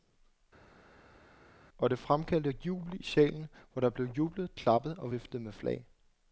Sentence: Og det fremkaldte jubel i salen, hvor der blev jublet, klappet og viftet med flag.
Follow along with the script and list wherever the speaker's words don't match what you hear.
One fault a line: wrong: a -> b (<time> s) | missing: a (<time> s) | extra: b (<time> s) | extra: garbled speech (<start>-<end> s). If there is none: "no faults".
no faults